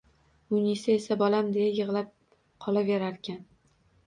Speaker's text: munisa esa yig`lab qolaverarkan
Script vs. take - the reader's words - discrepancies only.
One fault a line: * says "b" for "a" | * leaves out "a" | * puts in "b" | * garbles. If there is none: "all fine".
* puts in "bolam deya"